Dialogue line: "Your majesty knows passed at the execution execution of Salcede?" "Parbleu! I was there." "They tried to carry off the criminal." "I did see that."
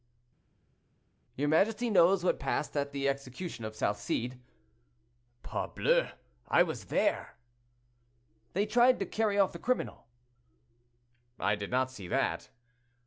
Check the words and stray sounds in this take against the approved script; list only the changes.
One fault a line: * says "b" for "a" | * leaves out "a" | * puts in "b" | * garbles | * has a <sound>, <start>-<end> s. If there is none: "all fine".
* puts in "what"
* leaves out "execution"
* puts in "not"